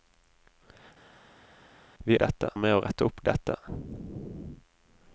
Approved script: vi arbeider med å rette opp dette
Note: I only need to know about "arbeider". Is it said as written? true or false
false